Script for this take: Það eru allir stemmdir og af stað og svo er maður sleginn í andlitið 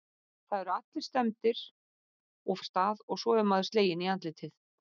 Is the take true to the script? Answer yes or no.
yes